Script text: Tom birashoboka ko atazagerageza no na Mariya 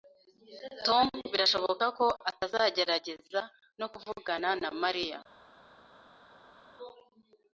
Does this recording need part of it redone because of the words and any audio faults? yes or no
yes